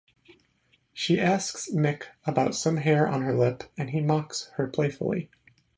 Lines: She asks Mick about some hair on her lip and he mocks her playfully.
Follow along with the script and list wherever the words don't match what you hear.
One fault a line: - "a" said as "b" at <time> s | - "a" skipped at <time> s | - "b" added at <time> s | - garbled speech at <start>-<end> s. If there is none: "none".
none